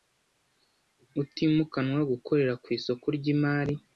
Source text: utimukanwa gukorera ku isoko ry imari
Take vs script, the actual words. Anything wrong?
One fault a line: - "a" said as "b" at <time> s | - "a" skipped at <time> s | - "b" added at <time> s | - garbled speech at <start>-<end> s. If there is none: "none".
none